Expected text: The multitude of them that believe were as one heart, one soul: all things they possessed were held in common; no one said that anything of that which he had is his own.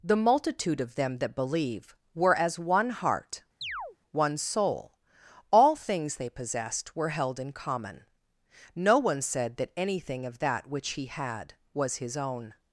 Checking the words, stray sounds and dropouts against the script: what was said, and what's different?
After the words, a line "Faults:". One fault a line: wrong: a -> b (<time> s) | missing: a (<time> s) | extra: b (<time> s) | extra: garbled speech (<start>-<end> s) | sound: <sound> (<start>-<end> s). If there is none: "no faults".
The multitude of them that believe were as one heart, one soul: all things they possessed were held in common; no one said that anything of that which he had was his own.
Faults:
sound: chirp (3.6-4.0 s)
wrong: is -> was (11.7 s)